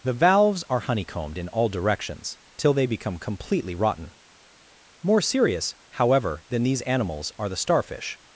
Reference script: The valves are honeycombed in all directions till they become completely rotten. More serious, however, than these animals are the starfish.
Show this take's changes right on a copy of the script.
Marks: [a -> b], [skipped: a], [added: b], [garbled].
The valves are honeycombed in all directions till they become completely rotten. More serious, however, than these animals are the starfish.